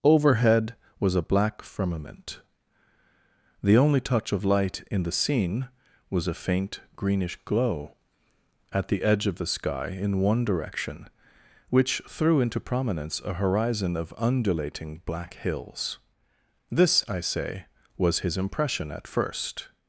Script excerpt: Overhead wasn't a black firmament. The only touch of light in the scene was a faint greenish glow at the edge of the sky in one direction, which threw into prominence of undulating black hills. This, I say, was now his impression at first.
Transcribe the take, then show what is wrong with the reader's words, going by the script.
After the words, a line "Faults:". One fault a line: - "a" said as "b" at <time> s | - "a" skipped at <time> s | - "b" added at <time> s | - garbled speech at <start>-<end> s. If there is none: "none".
Overhead was a black firmament. The only touch of light in the scene was a faint greenish glow at the edge of the sky in one direction, which threw into prominence a horizon of undulating black hills. This, I say, was his impression at first.
Faults:
- "wasn't" said as "was" at 1.0 s
- "a horizon" added at 13.2 s
- "now" skipped at 18.2 s